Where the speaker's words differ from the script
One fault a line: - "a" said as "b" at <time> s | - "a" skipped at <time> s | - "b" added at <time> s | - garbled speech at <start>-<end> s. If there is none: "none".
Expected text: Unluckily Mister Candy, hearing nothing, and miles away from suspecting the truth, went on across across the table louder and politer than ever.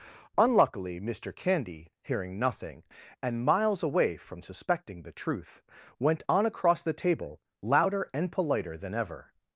- "across" skipped at 6.8 s